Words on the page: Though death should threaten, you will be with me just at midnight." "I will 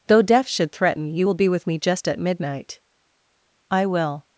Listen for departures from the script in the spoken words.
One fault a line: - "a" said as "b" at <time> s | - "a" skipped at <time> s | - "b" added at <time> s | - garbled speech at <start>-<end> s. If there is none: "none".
none